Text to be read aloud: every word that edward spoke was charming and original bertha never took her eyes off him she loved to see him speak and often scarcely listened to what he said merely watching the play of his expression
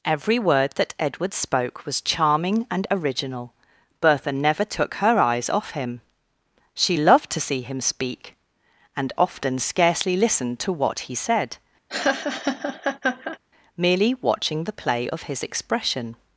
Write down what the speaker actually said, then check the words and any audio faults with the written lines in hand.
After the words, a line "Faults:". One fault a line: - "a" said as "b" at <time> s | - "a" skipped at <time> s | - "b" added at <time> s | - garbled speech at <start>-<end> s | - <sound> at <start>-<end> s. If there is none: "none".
every word that edward spoke was charming and original bertha never took her eyes off him she loved to see him speak and often scarcely listened to what he said merely watching the play of his expression
Faults:
- laugh at 11.9-13.4 s